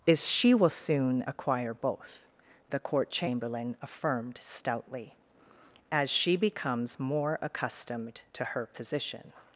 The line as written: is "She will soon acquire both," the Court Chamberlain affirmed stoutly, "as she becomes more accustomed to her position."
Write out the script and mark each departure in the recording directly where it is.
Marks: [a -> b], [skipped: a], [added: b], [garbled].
is "She will soon acquire both," the Court Chamberlain affirmed stoutly, "as she becomes more accustomed to her position."